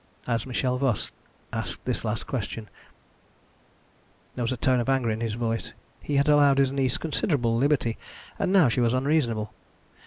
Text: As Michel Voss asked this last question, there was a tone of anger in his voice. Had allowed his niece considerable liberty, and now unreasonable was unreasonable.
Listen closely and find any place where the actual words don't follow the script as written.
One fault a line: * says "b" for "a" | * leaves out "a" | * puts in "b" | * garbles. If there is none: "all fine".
* puts in "He"
* says "she" for "unreasonable"